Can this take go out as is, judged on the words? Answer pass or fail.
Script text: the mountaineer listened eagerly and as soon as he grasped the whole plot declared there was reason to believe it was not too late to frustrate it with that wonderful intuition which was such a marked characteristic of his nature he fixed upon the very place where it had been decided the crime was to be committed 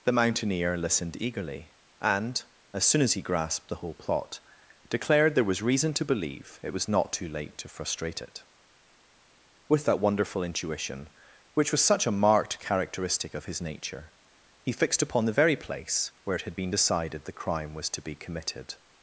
pass